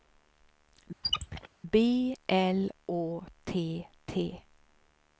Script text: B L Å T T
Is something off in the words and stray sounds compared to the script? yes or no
yes